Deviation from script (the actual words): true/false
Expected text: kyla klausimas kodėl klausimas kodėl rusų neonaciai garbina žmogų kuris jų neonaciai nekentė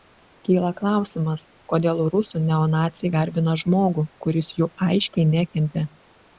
true